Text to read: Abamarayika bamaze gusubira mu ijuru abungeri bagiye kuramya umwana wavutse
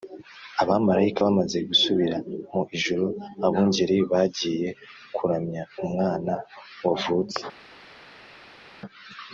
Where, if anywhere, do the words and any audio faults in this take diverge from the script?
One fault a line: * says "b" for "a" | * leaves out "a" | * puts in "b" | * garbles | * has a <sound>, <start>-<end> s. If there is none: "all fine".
all fine